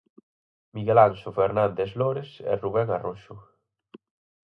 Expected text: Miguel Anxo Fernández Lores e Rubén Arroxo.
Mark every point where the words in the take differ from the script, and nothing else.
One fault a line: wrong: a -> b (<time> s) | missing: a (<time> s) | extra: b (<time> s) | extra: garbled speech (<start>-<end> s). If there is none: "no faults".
no faults